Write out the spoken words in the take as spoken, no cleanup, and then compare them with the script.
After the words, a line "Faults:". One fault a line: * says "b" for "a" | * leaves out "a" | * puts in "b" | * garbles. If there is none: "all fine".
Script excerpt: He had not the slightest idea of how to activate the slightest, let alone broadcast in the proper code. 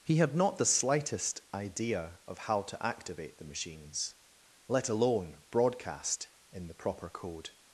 He had not the slightest idea of how to activate the machines, let alone broadcast in the proper code.
Faults:
* says "machines" for "slightest"